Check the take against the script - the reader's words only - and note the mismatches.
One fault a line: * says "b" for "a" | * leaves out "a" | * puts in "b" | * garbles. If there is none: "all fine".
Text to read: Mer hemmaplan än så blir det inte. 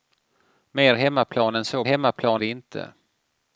* says "hemmaplan" for "blir"